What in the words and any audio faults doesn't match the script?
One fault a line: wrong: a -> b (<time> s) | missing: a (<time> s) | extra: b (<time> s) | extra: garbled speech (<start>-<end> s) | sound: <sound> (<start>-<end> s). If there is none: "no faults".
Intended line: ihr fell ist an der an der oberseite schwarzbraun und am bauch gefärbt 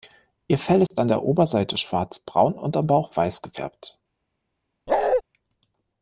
sound: dropout (0.9-0.9 s)
missing: an der (1.2 s)
extra: weiß (3.2 s)
sound: bark (4.9-5.2 s)